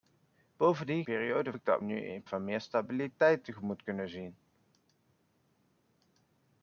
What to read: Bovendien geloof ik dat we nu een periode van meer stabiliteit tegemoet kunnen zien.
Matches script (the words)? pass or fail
fail